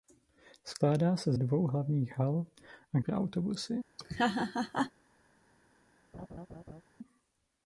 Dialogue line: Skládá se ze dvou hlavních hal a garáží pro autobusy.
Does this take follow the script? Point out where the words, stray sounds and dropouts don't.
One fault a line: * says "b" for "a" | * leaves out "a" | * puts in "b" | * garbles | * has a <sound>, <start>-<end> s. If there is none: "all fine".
* leaves out "ze"
* leaves out "garáží"
* has a laugh, 4.0-4.9 s
* has a laugh, 6.1-6.8 s